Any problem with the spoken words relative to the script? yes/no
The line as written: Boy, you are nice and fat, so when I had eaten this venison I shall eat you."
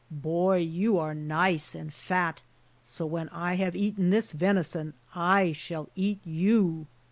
yes